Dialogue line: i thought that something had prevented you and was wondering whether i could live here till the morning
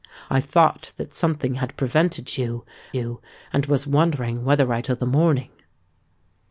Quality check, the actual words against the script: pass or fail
fail